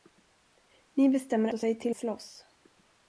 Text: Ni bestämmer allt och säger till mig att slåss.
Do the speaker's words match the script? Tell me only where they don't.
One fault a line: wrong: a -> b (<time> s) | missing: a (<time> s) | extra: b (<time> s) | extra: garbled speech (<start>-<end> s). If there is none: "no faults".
missing: allt (1.5 s)
missing: mig att (2.0 s)